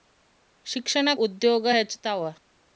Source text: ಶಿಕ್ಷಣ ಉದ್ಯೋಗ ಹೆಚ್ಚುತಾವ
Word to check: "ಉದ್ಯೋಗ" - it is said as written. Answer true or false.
true